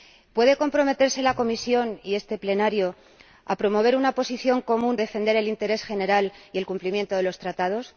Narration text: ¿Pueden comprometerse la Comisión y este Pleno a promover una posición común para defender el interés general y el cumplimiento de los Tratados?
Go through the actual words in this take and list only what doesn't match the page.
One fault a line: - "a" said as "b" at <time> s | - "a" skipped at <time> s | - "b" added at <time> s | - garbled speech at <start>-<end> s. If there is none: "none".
- "para" skipped at 5.0 s